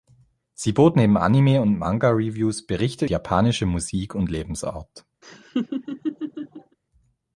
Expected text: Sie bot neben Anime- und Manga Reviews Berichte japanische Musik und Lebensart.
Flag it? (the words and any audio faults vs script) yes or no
yes